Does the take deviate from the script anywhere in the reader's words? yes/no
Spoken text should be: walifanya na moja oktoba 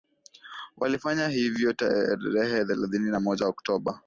yes